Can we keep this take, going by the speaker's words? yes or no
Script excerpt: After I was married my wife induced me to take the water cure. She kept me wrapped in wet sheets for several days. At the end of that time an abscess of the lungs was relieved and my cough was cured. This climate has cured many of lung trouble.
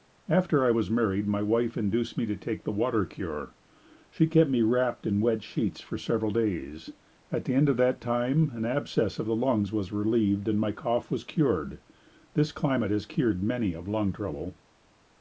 yes